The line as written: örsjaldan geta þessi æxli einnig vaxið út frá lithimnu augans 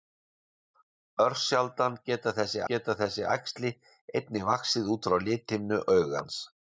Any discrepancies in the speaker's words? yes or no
yes